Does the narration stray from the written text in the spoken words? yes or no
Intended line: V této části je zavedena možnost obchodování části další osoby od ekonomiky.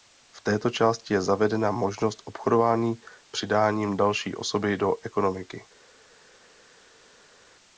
yes